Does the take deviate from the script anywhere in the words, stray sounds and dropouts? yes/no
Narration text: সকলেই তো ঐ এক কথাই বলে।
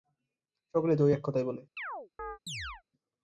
yes